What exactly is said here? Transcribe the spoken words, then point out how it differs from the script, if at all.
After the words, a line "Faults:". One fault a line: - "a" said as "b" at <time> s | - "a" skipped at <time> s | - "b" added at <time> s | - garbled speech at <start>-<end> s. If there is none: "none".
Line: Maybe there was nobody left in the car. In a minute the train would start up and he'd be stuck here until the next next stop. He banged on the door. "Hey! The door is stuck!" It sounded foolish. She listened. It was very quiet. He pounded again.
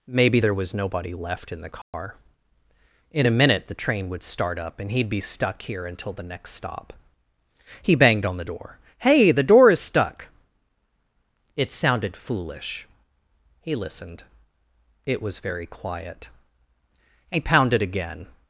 Maybe there was nobody left in the car. In a minute the train would start up and he'd be stuck here until the next stop. He banged on the door. "Hey! The door is stuck!" It sounded foolish. He listened. It was very quiet. He pounded again.
Faults:
- "next" skipped at 6.5 s
- "She" said as "He" at 13.6 s